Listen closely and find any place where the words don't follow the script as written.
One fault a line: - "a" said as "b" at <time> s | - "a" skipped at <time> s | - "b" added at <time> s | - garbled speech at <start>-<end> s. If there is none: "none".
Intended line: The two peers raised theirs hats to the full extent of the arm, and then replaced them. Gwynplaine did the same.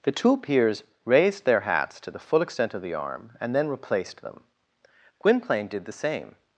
- "theirs" said as "their" at 1.4 s